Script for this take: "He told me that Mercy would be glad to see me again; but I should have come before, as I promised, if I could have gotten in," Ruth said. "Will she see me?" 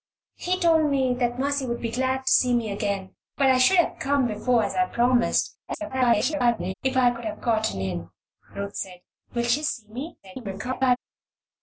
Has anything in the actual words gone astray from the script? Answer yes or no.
yes